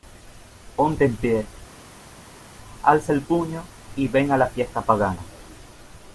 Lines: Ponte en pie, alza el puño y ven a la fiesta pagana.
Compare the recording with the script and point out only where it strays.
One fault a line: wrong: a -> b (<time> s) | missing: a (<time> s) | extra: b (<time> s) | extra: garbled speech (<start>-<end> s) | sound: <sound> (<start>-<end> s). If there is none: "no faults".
no faults